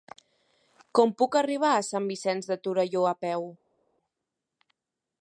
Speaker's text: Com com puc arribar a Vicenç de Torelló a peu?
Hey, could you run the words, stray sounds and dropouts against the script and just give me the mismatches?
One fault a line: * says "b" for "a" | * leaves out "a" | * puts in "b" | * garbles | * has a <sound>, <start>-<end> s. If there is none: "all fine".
* leaves out "com"
* puts in "Sant"